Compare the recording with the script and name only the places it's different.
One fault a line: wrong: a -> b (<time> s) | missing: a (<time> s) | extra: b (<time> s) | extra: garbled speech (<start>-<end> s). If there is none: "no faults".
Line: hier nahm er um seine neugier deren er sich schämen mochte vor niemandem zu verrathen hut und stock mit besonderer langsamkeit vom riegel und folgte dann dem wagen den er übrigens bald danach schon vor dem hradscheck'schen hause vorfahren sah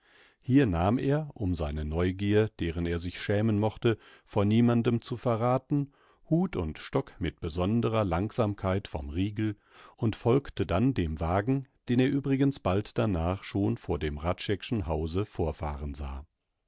no faults